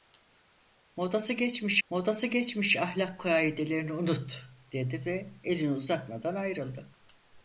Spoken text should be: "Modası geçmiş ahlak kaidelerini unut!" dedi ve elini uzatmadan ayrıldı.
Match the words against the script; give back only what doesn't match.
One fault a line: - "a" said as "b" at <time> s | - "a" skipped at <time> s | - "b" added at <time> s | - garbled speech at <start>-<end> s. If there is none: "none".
- "modası geçmiş" added at 1.9 s